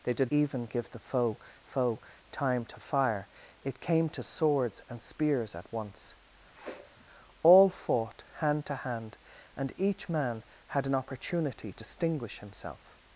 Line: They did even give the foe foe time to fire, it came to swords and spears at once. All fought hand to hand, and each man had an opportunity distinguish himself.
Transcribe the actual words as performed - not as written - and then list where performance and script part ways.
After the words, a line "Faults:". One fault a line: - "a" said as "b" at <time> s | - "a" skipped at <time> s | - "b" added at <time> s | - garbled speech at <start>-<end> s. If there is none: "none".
They did even give the foe foe time to fire, it came to swords and spears at once. All fought hand to hand, and each man had an opportunity distinguish himself.
Faults:
none